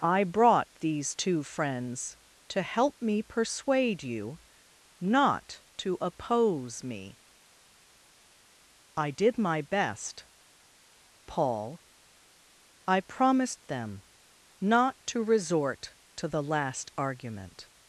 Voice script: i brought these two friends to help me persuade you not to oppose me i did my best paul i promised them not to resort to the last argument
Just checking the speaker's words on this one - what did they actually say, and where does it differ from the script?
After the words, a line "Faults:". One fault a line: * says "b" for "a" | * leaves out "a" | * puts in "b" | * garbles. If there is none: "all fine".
i brought these two friends to help me persuade you not to oppose me i did my best paul i promised them not to resort to the last argument
Faults:
all fine